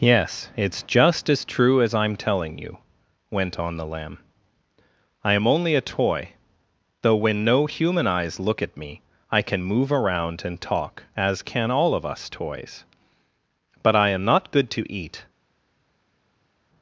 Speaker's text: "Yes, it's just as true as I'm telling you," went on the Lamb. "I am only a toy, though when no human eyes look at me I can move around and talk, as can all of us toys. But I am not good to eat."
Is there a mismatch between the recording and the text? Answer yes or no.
no